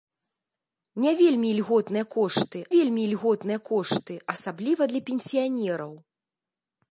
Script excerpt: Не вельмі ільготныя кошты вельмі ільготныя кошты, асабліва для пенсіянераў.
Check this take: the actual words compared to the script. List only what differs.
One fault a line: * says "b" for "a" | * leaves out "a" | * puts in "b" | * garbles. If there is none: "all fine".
all fine